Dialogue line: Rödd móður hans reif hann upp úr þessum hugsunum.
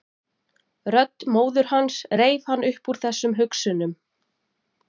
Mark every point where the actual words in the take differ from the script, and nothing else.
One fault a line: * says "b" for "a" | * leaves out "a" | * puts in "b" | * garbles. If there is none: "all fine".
all fine